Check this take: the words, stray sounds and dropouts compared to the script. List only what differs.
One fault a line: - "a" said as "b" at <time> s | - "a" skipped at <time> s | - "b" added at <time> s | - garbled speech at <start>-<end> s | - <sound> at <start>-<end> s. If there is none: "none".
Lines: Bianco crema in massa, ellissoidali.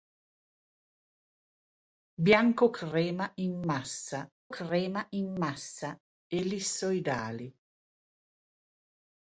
- "crema in massa" added at 4.5 s